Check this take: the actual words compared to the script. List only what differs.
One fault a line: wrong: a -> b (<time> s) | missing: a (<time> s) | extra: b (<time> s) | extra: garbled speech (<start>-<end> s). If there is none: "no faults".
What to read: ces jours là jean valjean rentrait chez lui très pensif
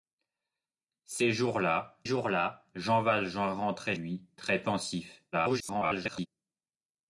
extra: jours là (2.0 s)
missing: chez (3.9 s)
extra: garbled speech (5.3-6.3 s)